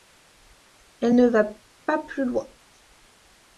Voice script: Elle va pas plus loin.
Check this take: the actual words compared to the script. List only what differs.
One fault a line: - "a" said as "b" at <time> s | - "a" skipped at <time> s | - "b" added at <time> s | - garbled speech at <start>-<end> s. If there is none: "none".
- "ne" added at 1.1 s